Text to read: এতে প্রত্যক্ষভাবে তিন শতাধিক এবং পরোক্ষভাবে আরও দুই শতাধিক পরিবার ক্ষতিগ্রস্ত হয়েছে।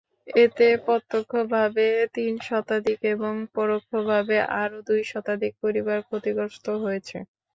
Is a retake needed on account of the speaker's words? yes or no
no